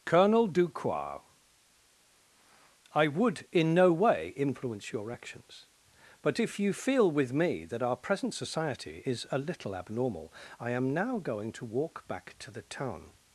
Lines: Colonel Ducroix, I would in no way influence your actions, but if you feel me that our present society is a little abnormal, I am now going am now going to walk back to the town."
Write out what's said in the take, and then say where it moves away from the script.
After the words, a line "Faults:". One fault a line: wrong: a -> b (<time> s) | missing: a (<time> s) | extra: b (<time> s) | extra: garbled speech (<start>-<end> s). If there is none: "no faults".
Colonel Ducroix, I would in no way influence your actions, but if you feel with me that our present society is a little abnormal, I am now going to walk back to the town."
Faults:
extra: with (7.1 s)
missing: am now going (11.5 s)